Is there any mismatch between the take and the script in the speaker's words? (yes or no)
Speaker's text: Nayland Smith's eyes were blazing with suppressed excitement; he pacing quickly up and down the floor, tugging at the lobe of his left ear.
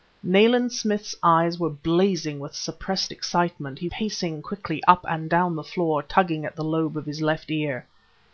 no